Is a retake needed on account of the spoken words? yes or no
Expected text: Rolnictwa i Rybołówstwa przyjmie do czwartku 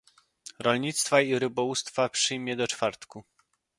no